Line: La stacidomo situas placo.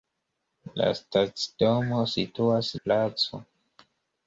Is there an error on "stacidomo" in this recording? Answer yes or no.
no